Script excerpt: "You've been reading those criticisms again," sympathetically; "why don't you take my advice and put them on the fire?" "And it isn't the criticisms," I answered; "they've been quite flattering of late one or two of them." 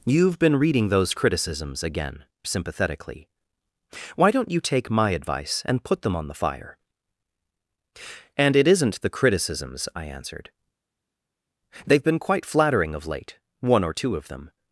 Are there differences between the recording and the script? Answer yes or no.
no